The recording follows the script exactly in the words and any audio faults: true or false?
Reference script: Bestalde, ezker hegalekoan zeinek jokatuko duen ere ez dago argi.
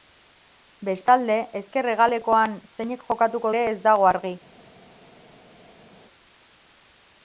false